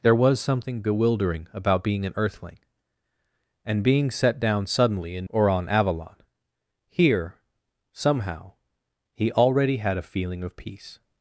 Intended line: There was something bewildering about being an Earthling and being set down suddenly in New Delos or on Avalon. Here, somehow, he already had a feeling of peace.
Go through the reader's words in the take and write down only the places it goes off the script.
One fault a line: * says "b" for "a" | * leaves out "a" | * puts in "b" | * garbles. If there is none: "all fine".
* leaves out "New Delos"